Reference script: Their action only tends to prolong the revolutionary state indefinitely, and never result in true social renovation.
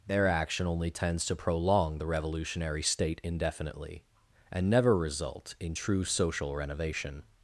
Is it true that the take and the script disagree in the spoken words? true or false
false